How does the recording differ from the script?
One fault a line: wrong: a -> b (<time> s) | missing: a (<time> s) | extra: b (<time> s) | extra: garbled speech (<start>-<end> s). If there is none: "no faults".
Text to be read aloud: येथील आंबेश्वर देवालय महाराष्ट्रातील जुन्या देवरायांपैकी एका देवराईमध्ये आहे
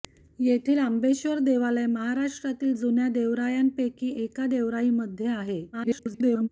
extra: garbled speech (5.7-6.5 s)